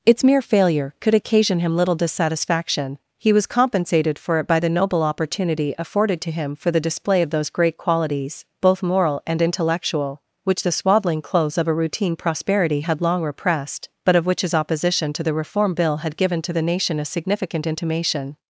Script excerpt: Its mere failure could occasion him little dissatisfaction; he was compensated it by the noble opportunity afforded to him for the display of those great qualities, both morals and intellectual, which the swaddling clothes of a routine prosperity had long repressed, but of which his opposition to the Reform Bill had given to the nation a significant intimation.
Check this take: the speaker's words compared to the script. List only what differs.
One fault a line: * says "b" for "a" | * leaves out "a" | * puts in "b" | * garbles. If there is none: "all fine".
* puts in "for"
* says "moral" for "morals"